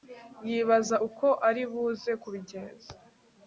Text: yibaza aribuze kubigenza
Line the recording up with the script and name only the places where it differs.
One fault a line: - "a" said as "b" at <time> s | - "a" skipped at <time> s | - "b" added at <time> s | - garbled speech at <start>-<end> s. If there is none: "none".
- "uko" added at 1.1 s